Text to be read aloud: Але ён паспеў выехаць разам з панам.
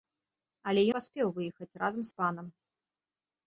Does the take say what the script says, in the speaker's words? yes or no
no